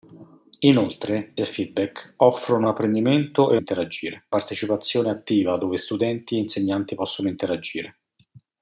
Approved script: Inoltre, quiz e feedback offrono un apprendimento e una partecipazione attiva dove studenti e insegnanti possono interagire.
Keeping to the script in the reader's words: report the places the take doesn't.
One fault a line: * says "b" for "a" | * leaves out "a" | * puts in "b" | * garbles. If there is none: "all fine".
* leaves out "quiz"
* leaves out "un"
* says "interagire" for "una"